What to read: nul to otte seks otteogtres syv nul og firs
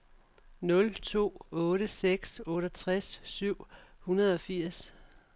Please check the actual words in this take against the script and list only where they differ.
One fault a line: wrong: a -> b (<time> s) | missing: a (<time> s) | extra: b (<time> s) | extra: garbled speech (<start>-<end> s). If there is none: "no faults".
wrong: nul -> hundrede (4.0 s)